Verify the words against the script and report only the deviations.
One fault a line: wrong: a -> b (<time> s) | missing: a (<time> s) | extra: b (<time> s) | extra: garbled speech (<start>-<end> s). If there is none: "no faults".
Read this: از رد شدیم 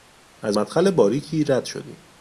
extra: مدخل باریکی (0.5 s)